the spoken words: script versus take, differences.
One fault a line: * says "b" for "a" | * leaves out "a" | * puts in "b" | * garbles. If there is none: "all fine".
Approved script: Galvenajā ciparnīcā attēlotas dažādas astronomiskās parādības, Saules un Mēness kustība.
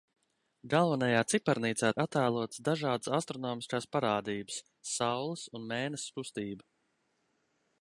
all fine